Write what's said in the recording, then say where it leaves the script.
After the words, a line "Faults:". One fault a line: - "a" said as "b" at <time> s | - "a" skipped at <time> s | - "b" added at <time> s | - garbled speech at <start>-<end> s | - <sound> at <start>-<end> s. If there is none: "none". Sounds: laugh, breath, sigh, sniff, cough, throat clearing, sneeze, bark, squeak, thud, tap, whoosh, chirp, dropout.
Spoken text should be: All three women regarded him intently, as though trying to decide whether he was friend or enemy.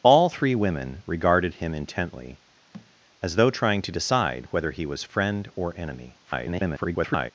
All three women regarded him intently, as though trying to decide whether he was friend or enemy. [garbled]
Faults:
- thud at 2.7-2.9 s
- garbled speech at 6.3-7.3 s